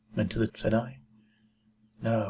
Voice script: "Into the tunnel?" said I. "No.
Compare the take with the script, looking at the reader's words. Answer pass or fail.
fail